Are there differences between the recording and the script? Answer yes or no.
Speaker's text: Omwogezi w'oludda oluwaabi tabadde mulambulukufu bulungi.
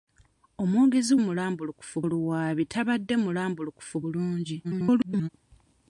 yes